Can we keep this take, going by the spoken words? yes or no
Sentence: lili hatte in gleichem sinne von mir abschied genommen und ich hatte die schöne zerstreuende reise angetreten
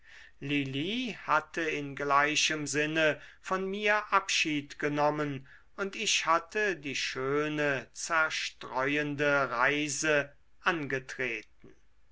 yes